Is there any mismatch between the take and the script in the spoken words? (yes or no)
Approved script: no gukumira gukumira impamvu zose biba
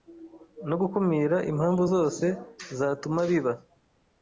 yes